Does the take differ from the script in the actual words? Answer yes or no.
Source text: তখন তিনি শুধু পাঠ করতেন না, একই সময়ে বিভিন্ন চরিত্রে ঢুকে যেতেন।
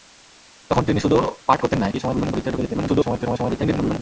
yes